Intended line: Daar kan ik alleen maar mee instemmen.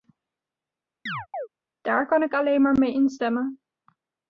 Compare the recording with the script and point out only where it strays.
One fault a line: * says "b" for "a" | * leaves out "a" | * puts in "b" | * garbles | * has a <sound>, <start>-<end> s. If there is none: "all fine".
* has a chirp, 1.1-1.5 s